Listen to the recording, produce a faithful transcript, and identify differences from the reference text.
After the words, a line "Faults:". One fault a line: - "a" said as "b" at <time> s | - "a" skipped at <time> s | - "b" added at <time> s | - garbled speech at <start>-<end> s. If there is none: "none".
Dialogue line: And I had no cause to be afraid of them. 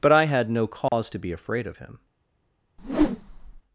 But I had no cause to be afraid of him.
Faults:
- "And" said as "But" at 0.0 s
- "them" said as "him" at 1.8 s